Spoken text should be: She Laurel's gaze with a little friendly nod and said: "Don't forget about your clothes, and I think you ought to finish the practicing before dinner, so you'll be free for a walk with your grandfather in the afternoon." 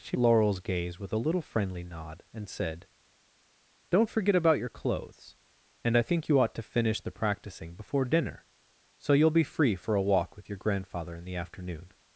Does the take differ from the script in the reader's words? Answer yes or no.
no